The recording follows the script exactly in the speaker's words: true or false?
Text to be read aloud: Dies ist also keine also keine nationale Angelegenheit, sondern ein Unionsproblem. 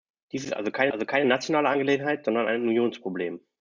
true